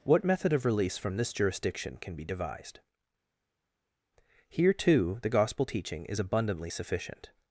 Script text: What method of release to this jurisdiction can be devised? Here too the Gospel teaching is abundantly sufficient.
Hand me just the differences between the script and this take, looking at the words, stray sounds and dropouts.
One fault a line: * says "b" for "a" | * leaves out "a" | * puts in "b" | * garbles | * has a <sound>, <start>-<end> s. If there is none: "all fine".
* says "from" for "to"